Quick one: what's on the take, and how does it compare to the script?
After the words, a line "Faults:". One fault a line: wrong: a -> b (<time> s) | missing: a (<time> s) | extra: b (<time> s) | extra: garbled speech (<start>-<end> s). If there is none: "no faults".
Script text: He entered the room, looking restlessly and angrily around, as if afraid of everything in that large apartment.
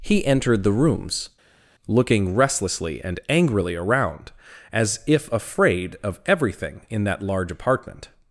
He entered the rooms, looking restlessly and angrily around, as if afraid of everything in that large apartment.
Faults:
wrong: room -> rooms (0.7 s)